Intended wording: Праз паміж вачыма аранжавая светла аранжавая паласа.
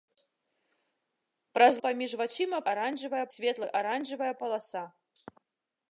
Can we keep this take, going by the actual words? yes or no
yes